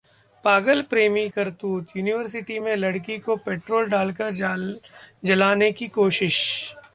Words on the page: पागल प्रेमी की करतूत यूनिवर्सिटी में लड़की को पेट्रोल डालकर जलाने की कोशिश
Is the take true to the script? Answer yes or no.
no